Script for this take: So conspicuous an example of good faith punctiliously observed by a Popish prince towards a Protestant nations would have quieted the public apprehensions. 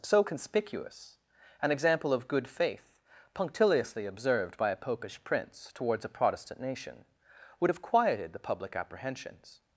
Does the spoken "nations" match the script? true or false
false